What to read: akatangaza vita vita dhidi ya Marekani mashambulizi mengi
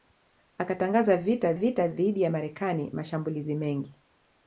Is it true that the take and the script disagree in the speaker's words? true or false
false